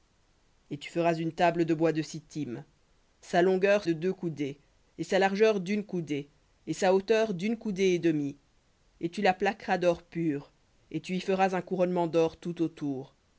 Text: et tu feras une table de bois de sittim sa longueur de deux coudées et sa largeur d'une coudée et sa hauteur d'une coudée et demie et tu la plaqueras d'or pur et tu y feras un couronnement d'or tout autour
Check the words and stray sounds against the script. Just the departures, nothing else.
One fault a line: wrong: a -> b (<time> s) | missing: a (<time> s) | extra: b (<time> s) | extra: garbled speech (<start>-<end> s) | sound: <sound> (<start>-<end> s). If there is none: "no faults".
no faults